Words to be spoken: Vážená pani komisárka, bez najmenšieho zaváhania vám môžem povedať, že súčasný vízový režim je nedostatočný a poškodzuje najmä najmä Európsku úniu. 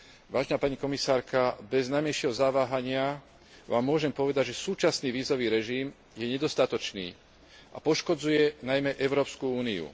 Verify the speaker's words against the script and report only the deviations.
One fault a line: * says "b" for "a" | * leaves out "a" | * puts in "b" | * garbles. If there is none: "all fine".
* leaves out "najmä"